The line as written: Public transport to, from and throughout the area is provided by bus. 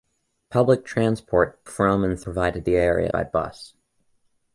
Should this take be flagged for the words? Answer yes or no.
yes